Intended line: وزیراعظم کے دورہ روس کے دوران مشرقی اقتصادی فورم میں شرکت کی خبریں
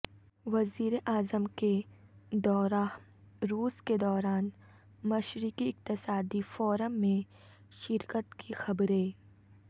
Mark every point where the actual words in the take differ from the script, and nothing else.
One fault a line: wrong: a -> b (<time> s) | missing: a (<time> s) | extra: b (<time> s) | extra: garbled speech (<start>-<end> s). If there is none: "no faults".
no faults